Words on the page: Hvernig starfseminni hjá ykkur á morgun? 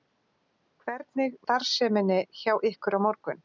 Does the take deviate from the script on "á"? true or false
false